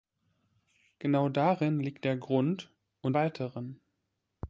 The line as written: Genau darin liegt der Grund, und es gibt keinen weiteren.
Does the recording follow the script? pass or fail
fail